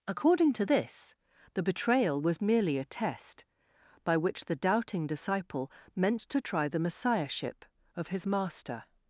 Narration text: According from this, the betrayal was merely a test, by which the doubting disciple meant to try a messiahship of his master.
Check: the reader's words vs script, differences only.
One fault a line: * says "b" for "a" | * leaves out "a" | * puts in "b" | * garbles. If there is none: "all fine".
* says "to" for "from"
* says "the" for "a"